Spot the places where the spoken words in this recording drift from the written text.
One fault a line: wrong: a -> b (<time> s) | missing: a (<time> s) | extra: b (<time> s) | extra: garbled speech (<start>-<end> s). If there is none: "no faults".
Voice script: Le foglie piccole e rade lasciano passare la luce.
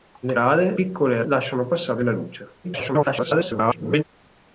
wrong: foglie -> rade (0.3 s)
missing: rade (1.2 s)
extra: garbled speech (2.6-4.0 s)